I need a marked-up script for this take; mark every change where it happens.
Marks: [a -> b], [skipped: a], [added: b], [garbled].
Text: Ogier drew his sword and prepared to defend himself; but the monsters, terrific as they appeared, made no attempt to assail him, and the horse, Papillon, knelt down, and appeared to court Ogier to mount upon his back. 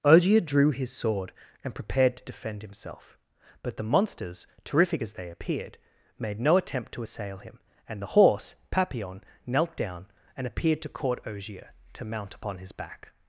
Ogier drew his sword and prepared to defend himself; but the monsters, terrific as they appeared, made no attempt to assail him, and the horse, Papillon, knelt down, and appeared to court Ogier to mount upon his back.